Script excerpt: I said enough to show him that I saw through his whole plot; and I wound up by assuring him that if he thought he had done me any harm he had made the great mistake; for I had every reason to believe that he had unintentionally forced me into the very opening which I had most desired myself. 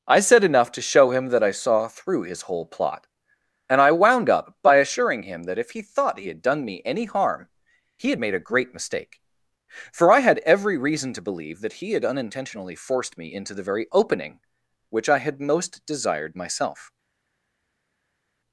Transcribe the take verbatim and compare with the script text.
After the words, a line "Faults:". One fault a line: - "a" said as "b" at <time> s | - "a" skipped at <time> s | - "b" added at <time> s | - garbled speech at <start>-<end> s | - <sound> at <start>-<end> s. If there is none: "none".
I said enough to show him that I saw through his whole plot; and I wound up by assuring him that if he thought he had done me any harm he had made a great mistake; for I had every reason to believe that he had unintentionally forced me into the very opening which I had most desired myself.
Faults:
- "the" said as "a" at 8.3 s